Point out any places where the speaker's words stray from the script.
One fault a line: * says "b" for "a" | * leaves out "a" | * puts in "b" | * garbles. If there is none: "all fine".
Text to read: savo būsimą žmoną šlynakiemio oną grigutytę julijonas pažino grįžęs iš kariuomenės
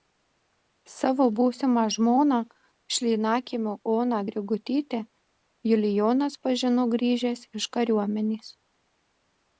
all fine